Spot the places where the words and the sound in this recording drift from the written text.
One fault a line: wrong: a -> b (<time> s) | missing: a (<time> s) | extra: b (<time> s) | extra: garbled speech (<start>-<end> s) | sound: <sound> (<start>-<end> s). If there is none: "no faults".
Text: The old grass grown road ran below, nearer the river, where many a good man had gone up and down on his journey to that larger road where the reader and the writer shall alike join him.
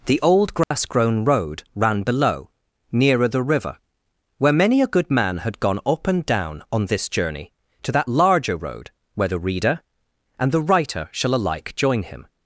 sound: dropout (0.6-0.7 s)
wrong: his -> this (6.9 s)